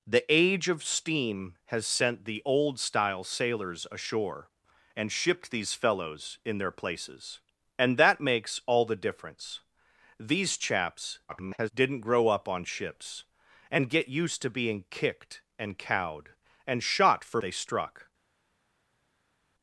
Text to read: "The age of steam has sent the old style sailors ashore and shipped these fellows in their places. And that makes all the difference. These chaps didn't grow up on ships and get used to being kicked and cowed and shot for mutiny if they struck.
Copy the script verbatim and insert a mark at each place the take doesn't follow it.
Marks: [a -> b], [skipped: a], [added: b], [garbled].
"The age of steam has sent the old style sailors ashore and shipped these fellows in their places. And that makes all the difference. These chaps [garbled] didn't grow up on ships and get used to being kicked and cowed and shot for [skipped: mutiny if] they struck.